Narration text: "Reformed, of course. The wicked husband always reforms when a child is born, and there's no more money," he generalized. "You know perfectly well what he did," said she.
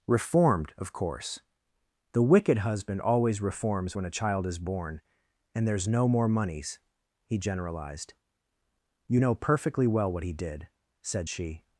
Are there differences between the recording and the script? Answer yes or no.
yes